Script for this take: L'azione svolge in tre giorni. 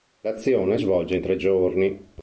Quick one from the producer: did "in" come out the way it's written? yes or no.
yes